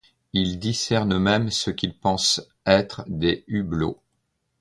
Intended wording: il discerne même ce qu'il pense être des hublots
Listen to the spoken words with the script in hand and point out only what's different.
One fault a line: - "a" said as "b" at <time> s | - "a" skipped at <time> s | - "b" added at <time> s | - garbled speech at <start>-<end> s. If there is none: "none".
none